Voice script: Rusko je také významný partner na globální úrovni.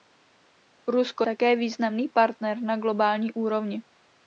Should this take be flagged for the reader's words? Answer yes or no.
yes